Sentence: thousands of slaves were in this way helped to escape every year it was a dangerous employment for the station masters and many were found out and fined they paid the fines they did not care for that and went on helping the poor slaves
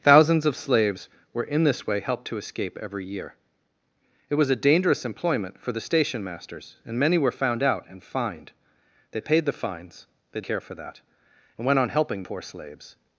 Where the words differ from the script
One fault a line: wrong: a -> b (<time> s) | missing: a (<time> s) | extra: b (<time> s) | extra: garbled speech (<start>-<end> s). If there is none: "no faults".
missing: did not (10.4 s)
missing: the (12.2 s)